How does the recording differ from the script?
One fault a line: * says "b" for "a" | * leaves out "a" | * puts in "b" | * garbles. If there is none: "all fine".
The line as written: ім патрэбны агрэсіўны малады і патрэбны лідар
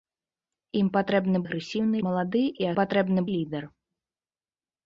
all fine